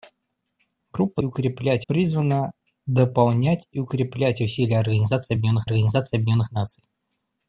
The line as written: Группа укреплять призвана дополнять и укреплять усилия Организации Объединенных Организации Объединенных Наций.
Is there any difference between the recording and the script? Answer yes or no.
no